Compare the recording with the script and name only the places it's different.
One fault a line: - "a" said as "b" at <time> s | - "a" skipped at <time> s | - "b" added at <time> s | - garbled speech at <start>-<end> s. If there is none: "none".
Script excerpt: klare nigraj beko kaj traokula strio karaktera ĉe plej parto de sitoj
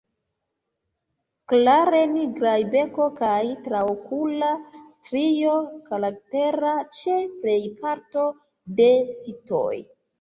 none